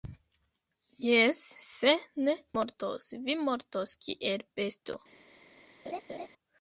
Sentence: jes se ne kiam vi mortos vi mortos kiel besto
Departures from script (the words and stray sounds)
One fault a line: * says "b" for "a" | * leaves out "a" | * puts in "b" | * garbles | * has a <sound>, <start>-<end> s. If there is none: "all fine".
* leaves out "kiam vi"
* has a laugh, 5.8-6.3 s